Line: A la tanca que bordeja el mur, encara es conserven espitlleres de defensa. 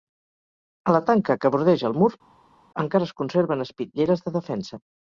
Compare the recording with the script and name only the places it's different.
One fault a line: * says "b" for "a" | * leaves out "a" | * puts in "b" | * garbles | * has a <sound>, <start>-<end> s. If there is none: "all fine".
all fine